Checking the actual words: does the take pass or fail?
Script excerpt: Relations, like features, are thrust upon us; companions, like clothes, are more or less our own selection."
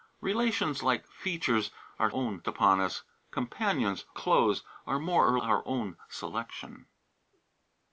fail